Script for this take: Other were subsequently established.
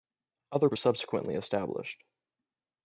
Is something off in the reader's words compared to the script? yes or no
no